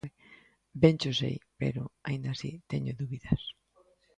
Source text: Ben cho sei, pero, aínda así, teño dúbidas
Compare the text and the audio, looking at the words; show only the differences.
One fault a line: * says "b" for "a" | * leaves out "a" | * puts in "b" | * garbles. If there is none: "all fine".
all fine